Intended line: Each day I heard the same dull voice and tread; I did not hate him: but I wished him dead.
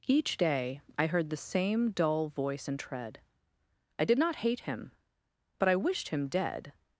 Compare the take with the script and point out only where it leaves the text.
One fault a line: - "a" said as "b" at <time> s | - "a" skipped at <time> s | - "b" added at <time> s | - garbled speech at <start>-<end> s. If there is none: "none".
none